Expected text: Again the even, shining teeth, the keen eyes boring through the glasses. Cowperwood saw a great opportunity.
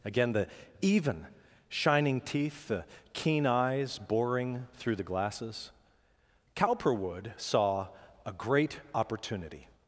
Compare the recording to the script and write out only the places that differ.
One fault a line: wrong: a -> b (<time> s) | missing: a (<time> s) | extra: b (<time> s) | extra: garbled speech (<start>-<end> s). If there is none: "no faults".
no faults